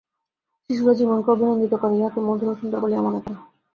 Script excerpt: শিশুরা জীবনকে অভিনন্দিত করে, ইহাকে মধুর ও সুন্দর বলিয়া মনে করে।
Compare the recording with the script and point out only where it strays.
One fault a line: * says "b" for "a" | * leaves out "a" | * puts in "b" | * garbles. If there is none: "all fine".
all fine